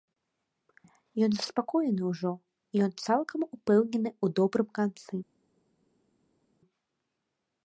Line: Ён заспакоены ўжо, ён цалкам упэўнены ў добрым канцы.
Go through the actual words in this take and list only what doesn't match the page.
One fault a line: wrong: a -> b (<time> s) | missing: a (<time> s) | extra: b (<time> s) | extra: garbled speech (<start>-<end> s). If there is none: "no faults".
no faults